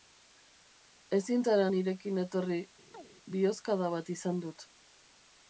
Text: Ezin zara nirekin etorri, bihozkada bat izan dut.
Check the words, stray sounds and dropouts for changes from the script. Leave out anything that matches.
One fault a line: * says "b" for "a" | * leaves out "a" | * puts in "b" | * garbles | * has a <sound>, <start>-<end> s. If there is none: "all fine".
* has a chirp, 2.9-3.1 s